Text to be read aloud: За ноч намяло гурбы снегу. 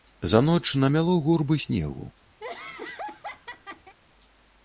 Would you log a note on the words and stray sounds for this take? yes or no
yes